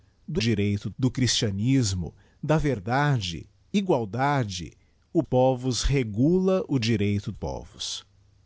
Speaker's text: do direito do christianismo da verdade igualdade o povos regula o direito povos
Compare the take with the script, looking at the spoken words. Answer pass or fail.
pass